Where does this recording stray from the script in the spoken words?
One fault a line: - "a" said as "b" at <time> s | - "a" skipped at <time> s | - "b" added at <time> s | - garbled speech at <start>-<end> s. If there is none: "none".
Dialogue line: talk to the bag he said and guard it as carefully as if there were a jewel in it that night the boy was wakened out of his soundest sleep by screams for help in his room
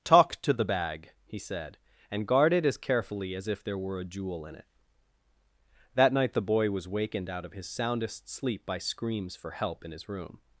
none